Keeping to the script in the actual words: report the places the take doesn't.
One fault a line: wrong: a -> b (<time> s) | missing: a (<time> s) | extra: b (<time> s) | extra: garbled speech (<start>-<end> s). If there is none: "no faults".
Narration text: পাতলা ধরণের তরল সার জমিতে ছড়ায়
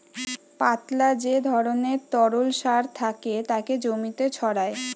extra: যে (1.2 s)
extra: থাকে তাকে (3.0 s)